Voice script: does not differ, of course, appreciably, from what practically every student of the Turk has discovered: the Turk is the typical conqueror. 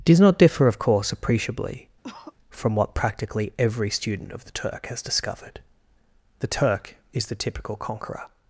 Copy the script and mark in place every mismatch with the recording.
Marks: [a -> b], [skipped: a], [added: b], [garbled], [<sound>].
does not differ, of course, appreciably, [cough] from what practically every student of the Turk has discovered: the Turk is the typical conqueror.